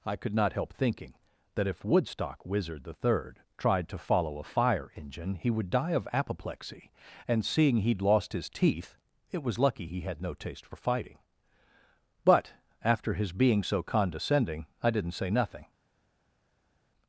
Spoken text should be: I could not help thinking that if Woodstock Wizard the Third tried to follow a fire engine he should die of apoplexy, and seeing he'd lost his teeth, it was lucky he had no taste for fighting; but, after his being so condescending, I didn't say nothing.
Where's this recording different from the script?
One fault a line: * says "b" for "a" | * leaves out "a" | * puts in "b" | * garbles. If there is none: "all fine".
* says "would" for "should"